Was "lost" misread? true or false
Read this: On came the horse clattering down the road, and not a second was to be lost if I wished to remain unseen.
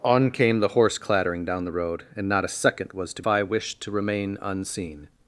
true